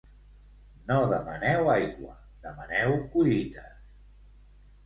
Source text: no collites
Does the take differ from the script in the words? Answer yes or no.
yes